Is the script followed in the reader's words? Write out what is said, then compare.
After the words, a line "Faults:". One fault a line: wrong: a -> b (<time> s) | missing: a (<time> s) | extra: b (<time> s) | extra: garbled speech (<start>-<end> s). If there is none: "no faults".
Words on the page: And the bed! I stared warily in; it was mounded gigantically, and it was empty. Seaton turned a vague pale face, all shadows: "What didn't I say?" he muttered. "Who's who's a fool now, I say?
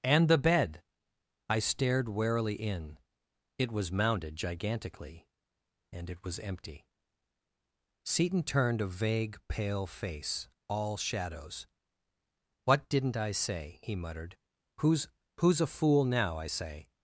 And the bed! I stared warily in; it was mounded gigantically, and it was empty. Seaton turned a vague pale face, all shadows: "What didn't I say?" he muttered. "Who's who's a fool now, I say?
Faults:
no faults